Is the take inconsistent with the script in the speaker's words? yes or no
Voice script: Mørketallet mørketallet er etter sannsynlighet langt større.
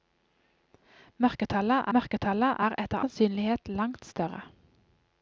no